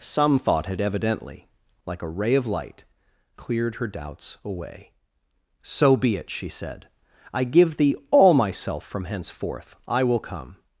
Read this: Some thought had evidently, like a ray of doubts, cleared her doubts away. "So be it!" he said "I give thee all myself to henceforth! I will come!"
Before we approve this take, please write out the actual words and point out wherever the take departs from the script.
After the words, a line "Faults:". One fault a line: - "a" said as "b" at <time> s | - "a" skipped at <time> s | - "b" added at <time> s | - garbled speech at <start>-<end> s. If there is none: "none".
Some thought had evidently, like a ray of light, cleared her doubts away. "So be it!" she said "I give thee all myself from henceforth! I will come!"
Faults:
- "doubts" said as "light" at 2.5 s
- "he" said as "she" at 6.3 s
- "to" said as "from" at 8.8 s